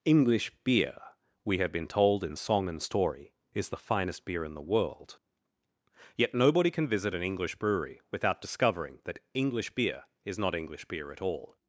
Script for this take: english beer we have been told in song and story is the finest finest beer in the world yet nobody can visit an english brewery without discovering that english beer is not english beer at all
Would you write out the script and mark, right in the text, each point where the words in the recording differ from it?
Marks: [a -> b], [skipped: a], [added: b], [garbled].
english beer we have been told in song and story is the finest [skipped: finest] beer in the world yet nobody can visit an english brewery without discovering that english beer is not english beer at all